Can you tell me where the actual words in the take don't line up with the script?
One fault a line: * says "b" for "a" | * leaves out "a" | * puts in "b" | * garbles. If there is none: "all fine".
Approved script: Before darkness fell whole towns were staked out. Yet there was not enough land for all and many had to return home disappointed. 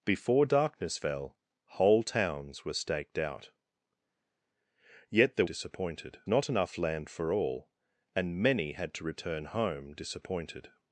* says "disappointed" for "was"